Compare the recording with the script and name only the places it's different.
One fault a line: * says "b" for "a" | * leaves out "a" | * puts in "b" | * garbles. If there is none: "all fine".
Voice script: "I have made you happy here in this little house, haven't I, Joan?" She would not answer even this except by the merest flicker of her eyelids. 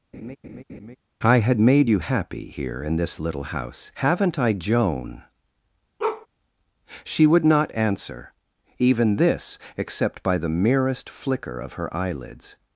* says "had" for "have"